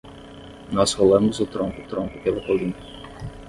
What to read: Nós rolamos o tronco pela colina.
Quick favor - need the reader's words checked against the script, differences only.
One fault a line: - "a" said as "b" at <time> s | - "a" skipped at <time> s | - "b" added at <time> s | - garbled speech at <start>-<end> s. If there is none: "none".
- "tronco" added at 1.8 s